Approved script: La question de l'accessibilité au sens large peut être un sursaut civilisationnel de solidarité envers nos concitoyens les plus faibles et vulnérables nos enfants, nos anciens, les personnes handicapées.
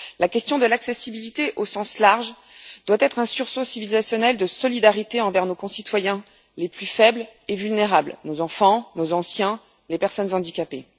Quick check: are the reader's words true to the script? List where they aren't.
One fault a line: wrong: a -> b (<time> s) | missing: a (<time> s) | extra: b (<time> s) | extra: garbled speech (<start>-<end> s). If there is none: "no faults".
wrong: peut -> doit (2.9 s)